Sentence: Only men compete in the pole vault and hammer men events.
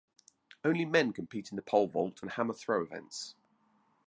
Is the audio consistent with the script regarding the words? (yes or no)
no